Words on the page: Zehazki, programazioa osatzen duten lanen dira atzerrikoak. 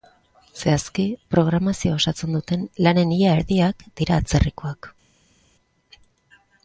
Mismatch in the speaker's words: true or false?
true